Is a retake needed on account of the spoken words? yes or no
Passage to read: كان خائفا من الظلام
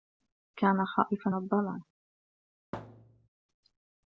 yes